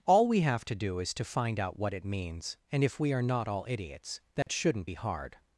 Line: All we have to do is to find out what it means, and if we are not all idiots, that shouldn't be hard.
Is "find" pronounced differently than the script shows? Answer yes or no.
no